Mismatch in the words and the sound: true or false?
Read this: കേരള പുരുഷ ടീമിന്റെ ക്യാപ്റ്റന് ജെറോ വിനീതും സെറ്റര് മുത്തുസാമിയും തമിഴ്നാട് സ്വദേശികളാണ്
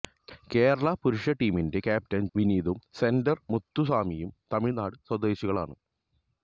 true